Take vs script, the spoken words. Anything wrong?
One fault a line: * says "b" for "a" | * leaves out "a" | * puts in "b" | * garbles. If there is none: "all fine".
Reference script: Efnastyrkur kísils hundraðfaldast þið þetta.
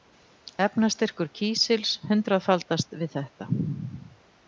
* says "við" for "þið"